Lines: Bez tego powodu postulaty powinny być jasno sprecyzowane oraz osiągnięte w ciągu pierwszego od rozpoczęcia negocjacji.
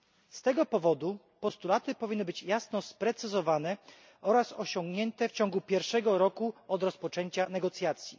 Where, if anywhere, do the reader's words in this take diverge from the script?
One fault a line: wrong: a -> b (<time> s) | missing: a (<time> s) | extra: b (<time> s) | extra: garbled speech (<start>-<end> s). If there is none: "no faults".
wrong: Bez -> Z (0.3 s)
extra: roku (6.2 s)